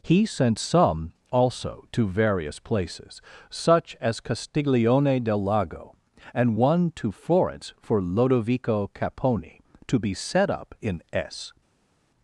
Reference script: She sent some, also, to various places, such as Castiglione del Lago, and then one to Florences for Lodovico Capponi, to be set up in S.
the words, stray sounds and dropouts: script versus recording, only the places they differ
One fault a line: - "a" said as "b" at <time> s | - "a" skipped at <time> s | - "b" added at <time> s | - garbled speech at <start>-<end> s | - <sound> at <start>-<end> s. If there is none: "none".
- "She" said as "He" at 0.0 s
- "then" skipped at 6.6 s
- "Florences" said as "Florence" at 7.1 s